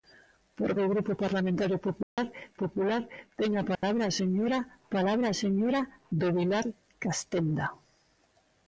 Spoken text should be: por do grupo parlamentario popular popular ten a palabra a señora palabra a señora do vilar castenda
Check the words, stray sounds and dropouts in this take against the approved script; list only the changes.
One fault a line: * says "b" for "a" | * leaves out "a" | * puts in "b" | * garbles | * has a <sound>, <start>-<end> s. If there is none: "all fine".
* has a dropout, 2.0-2.2 s
* has a dropout, 3.8-3.8 s